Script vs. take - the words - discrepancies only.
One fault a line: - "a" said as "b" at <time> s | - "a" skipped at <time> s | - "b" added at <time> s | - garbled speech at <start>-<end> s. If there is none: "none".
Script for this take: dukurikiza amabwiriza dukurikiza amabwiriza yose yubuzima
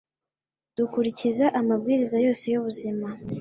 - "dukurikiza amabwiriza" skipped at 2.2 s